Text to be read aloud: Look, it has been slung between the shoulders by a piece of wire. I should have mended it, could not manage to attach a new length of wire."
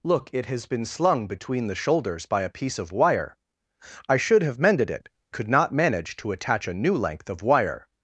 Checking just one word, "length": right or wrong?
right